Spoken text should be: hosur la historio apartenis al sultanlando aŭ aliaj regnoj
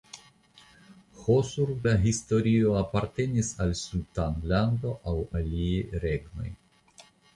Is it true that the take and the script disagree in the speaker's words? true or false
false